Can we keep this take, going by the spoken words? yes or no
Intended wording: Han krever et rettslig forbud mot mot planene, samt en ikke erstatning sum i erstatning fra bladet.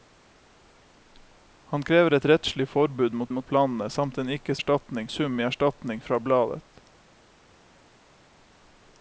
yes